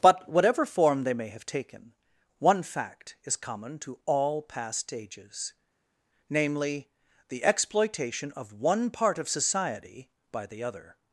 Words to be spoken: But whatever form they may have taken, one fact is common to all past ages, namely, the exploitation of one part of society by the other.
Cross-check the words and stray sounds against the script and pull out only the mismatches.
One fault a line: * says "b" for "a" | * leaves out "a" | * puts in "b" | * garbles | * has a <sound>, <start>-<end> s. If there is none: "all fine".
all fine